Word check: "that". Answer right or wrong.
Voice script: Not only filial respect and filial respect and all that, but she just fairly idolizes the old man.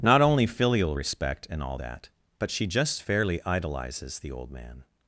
right